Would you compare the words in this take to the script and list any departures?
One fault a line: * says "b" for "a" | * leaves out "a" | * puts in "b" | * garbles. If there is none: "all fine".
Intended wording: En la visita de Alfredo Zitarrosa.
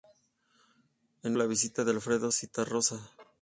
all fine